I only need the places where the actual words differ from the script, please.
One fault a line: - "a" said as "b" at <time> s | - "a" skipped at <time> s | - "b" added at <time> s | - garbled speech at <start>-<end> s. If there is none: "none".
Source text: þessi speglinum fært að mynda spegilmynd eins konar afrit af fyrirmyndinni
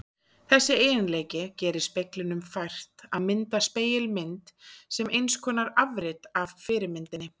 - "eiginleiki gerir" added at 0.8 s
- "sem" added at 5.0 s